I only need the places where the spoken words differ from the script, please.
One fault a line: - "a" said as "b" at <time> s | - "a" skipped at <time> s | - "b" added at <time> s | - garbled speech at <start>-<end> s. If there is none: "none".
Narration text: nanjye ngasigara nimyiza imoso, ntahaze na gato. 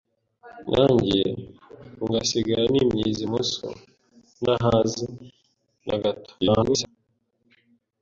- garbled speech at 6.4-6.9 s